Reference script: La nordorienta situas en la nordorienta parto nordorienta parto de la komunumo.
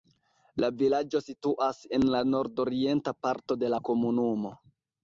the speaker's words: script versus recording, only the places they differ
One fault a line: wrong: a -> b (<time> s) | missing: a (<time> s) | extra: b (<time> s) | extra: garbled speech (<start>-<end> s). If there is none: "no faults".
wrong: nordorienta -> vilaĝo (0.8 s)
missing: nordorienta parto (3.6 s)